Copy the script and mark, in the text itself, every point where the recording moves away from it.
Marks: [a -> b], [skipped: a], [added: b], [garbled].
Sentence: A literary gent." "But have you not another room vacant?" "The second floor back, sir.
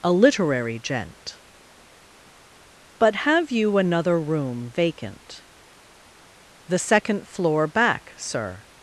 A literary gent." "But have you [skipped: not] another room vacant?" "The second floor back, sir.